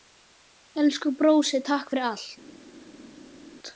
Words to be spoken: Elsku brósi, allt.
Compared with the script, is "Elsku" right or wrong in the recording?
right